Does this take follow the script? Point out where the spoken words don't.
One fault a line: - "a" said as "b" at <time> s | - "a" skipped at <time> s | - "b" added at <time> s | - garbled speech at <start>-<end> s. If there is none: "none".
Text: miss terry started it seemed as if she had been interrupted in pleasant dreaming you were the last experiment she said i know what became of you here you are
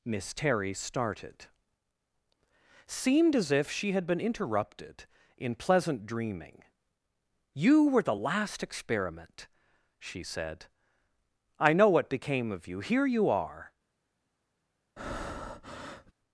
- "it" skipped at 1.4 s